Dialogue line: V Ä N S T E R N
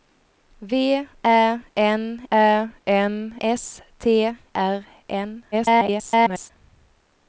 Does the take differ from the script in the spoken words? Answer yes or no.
yes